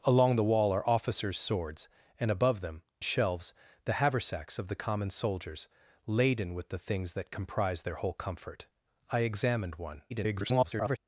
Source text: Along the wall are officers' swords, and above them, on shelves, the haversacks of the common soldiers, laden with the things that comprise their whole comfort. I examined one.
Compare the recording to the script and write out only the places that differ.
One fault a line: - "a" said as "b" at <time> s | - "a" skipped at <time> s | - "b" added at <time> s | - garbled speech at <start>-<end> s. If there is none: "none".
- "on" skipped at 2.8 s
- garbled speech at 10.1-11.0 s